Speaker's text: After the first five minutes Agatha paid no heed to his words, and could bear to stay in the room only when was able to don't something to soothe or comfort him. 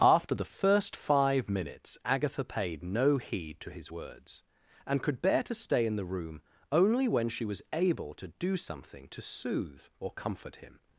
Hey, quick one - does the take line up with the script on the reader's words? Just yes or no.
no